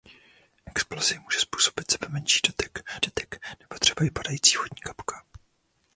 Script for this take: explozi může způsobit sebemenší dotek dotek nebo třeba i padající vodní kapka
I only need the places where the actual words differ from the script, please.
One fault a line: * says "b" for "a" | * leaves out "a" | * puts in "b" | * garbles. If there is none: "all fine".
all fine